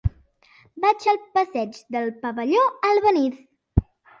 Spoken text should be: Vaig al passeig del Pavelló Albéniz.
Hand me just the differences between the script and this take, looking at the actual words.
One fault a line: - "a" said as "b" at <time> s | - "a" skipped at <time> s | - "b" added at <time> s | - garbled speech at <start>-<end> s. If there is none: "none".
none